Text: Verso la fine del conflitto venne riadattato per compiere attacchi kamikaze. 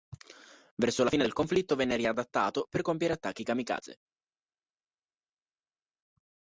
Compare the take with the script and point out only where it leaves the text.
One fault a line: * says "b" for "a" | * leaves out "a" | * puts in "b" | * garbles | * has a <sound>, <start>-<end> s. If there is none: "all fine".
all fine